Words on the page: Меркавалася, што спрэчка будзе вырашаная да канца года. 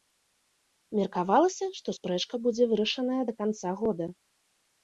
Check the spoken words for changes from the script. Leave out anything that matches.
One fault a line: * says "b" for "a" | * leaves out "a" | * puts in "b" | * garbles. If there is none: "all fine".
all fine